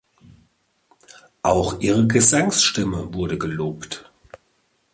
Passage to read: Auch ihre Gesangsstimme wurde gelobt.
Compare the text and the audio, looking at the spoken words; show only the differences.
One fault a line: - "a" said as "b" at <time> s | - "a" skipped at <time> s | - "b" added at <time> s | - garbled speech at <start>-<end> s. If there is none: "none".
none